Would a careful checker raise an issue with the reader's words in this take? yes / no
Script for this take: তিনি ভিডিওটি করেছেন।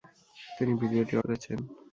no